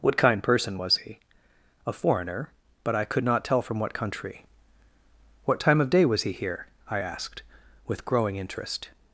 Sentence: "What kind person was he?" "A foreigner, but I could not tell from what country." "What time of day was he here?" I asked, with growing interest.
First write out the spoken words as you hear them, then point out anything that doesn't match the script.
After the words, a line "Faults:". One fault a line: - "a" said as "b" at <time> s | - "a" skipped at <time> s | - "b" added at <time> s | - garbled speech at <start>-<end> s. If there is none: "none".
"What kind person was he?" "A foreigner, but I could not tell from what country." "What time of day was he here?" I asked, with growing interest.
Faults:
none